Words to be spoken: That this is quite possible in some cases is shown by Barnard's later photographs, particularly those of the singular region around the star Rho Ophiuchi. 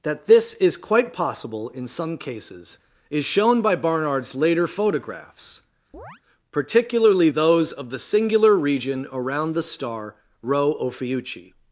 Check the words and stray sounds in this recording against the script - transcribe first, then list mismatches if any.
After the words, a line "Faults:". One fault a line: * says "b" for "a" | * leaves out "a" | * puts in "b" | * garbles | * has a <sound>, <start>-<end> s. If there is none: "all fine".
That this is quite possible in some cases is shown by Barnard's later photographs, particularly those of the singular region around the star Rho Ophiuchi.
Faults:
* has a chirp, 5.9-6.2 s